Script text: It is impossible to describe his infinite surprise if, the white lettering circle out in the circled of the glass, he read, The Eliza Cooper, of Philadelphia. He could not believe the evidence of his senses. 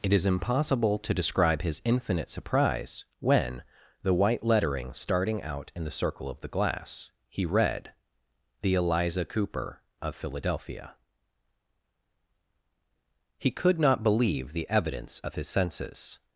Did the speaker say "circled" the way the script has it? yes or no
no